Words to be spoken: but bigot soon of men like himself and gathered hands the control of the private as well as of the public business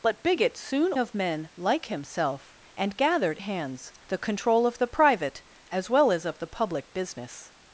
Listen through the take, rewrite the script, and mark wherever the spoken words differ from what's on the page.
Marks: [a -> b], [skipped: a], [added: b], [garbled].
but bigot soon of men like himself and gathered hands the control of the private as well as of the public business